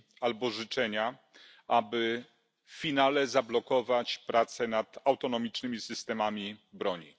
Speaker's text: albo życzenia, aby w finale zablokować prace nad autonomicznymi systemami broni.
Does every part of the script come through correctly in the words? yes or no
yes